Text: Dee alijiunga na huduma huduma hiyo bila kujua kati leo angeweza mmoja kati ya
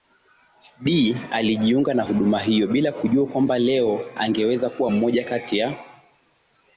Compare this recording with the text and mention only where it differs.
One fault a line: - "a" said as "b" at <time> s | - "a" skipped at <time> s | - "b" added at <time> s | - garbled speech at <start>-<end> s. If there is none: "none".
- "huduma" skipped at 2.4 s
- "kati" said as "kwamba" at 3.3 s
- "kuwa" added at 4.7 s